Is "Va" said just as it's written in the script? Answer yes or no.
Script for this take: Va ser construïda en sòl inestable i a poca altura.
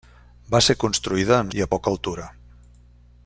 yes